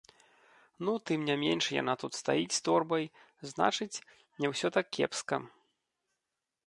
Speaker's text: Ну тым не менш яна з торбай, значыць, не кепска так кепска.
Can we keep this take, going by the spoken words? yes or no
no